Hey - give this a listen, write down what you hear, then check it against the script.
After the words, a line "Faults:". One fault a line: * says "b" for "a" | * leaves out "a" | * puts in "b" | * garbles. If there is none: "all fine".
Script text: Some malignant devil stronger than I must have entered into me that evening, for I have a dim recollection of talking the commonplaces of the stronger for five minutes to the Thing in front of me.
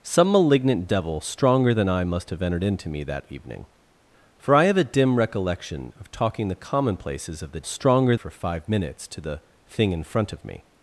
Some malignant devil stronger than I must have entered into me that evening, for I have a dim recollection of talking the commonplaces of the stronger for five minutes to the Thing in front of me.
Faults:
all fine